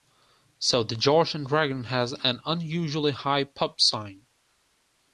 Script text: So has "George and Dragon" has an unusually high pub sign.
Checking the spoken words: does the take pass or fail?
fail